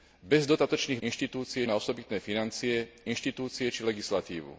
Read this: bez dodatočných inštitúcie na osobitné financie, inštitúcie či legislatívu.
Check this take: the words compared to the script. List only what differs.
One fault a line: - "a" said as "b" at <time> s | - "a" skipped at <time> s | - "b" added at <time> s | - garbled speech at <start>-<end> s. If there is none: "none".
none